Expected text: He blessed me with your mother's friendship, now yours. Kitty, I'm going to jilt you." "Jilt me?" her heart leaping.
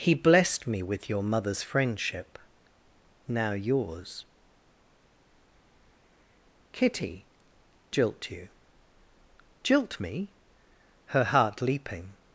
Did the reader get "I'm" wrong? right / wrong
wrong